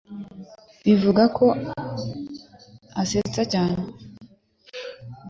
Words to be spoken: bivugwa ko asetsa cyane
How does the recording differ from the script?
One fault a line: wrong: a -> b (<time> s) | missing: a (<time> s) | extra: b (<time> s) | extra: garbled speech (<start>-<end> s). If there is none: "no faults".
no faults